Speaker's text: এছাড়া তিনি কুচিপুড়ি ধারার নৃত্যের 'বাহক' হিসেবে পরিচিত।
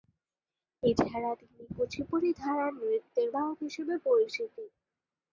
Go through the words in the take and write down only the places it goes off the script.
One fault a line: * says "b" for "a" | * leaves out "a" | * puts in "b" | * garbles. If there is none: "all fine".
all fine